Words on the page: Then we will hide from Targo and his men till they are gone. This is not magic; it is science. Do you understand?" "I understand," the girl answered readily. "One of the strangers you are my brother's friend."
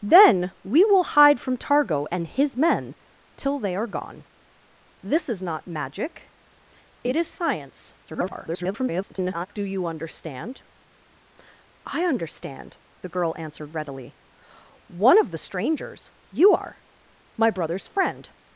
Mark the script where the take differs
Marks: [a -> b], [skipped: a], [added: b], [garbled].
Then we will hide from Targo and his men till they are gone. This is not magic; it is science. [garbled] Do you understand?" "I understand," the girl answered readily. "One of the strangers you are my brother's friend."